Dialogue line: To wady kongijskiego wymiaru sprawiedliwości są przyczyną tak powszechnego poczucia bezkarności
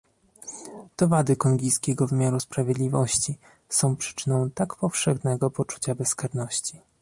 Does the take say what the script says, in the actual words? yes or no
yes